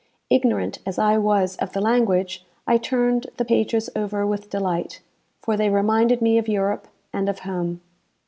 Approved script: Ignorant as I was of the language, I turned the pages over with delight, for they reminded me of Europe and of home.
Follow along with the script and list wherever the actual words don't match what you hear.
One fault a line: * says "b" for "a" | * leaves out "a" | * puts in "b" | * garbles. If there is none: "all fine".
all fine